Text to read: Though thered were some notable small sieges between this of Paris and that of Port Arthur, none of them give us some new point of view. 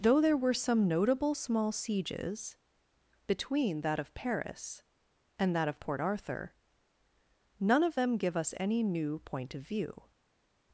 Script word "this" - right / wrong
wrong